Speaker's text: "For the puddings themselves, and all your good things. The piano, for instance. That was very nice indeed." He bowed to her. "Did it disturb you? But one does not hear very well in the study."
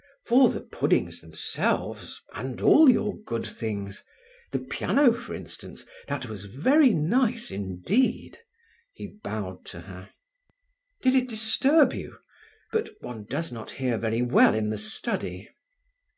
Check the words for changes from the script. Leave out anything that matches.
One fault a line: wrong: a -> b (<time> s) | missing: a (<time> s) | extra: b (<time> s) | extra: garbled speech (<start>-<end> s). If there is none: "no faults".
no faults